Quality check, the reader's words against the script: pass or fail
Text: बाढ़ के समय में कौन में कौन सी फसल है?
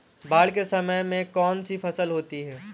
fail